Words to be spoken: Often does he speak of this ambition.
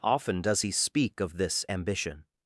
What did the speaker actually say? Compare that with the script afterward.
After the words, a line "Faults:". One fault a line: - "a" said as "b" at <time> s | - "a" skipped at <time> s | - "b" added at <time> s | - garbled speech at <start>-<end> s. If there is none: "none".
Often does he speak of this ambition.
Faults:
none